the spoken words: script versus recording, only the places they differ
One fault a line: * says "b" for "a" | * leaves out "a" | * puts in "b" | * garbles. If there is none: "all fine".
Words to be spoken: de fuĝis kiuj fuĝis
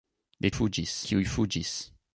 all fine